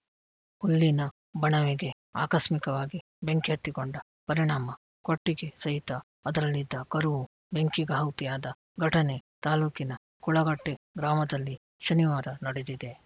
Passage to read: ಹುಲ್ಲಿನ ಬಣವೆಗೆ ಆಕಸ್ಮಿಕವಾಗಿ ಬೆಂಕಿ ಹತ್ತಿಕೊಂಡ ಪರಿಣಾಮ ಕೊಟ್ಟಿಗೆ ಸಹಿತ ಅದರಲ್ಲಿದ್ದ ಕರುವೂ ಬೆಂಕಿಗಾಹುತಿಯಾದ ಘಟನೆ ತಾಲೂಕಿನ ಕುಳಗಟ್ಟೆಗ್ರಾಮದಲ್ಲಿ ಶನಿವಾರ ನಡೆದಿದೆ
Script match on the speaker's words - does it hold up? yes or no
yes